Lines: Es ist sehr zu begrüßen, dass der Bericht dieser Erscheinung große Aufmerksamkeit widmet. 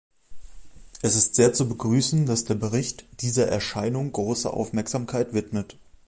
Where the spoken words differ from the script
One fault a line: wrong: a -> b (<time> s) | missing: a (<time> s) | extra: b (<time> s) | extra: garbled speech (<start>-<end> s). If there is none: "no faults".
no faults